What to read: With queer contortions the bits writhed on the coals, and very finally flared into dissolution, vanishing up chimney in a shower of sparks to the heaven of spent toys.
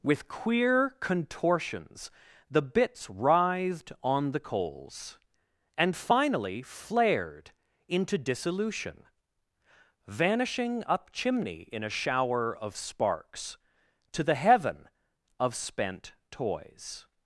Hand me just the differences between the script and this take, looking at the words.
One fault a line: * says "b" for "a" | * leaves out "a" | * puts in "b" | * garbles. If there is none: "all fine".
* leaves out "very"